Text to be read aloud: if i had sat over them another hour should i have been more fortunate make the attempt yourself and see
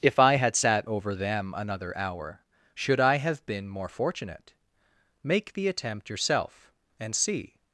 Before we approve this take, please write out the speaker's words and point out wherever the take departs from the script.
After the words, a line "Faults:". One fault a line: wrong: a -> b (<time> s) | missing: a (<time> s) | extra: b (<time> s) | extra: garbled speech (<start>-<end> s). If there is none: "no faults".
if i had sat over them another hour should i have been more fortunate make the attempt yourself and see
Faults:
no faults